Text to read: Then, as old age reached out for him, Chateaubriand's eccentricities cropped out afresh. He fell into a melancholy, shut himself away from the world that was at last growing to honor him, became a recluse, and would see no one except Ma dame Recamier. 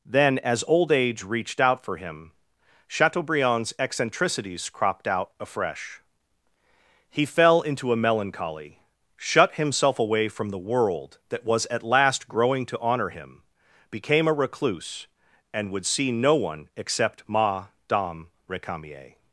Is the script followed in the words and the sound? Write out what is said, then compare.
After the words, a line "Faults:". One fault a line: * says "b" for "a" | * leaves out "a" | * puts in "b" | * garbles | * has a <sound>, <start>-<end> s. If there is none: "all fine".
Then, as old age reached out for him, Chateaubriand's eccentricities cropped out afresh. He fell into a melancholy, shut himself away from the world that was at last growing to honor him, became a recluse, and would see no one except Ma dame Recamier.
Faults:
all fine